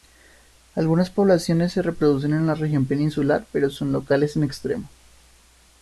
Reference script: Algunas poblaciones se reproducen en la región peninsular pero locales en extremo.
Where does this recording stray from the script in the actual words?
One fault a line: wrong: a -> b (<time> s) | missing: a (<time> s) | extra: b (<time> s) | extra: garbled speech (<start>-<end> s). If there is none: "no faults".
extra: son (3.7 s)